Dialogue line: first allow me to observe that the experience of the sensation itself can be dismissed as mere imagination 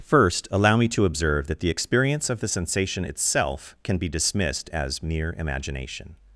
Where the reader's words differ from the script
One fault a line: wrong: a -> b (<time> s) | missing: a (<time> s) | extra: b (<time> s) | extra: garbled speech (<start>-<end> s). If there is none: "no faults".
no faults